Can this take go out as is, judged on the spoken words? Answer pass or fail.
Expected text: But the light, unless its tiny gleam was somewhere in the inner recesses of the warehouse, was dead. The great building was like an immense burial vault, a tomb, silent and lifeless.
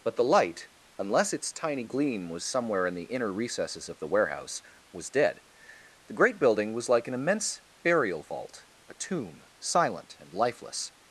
pass